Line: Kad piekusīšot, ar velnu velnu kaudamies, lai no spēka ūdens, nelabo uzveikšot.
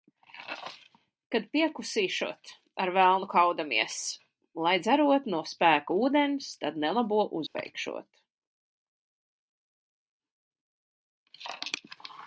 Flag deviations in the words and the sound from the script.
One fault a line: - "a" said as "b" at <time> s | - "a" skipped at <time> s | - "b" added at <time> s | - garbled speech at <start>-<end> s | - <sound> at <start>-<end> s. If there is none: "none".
- "velnu" skipped at 3.3 s
- "dzerot" added at 4.8 s
- "tad" added at 6.6 s
- dropout at 7.5-7.5 s